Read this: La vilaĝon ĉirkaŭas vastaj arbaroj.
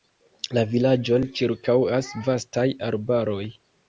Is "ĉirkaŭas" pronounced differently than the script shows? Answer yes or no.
no